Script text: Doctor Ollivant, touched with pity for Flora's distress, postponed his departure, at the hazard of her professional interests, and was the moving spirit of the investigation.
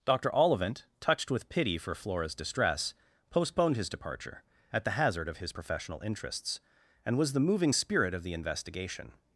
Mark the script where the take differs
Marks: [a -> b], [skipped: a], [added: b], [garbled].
Doctor Ollivant, touched with pity for Flora's distress, postponed his departure, at the hazard of [her -> his] professional interests, and was the moving spirit of the investigation.